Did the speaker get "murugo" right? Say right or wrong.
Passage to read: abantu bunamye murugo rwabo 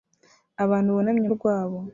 wrong